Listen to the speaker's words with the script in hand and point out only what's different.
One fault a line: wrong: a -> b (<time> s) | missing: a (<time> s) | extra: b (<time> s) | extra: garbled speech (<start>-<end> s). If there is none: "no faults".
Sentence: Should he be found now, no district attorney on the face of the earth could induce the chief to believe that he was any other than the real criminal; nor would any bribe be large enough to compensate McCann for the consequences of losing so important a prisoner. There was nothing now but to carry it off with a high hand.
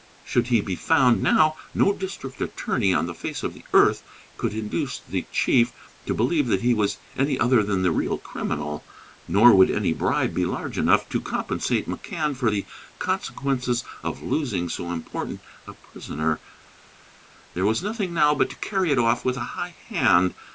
no faults